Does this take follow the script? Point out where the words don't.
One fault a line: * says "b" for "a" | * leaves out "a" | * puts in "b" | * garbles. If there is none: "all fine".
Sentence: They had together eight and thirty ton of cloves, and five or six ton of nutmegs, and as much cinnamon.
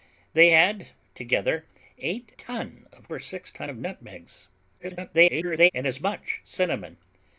* leaves out "and thirty"
* leaves out "cloves and five"
* garbles